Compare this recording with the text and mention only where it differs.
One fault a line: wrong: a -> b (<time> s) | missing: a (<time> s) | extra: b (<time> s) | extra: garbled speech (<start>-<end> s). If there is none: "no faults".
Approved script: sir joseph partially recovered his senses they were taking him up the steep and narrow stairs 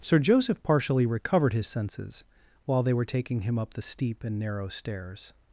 extra: while (2.6 s)